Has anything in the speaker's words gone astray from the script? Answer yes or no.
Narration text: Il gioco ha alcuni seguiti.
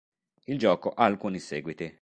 no